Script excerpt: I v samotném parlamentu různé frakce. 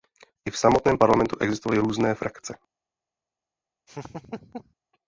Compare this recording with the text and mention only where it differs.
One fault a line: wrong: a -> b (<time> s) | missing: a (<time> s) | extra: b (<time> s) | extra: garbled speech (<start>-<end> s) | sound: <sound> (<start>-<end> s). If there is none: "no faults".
extra: existovaly (1.4 s)
sound: laugh (3.9-4.7 s)